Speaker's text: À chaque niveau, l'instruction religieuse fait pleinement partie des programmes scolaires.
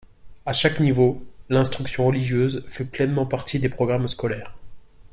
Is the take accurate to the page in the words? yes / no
yes